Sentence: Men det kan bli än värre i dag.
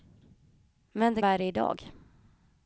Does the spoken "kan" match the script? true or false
false